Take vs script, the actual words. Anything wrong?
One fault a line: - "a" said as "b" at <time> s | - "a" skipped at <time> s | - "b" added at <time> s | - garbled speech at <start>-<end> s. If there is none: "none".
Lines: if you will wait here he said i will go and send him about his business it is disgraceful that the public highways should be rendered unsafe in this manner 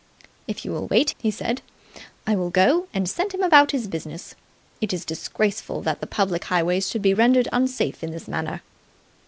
- "here" skipped at 1.1 s